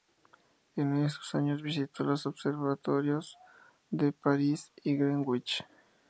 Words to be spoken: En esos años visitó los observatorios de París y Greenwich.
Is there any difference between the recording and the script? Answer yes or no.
no